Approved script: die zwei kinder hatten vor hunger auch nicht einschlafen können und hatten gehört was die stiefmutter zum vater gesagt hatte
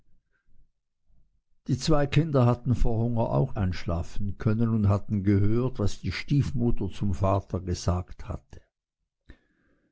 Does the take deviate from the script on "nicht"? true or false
true